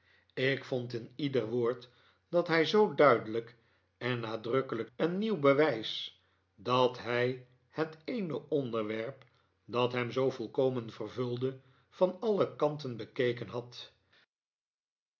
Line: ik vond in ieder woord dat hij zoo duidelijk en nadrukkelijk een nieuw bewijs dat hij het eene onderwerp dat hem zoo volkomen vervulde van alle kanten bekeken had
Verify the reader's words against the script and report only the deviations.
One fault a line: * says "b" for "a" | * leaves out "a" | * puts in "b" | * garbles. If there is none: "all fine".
all fine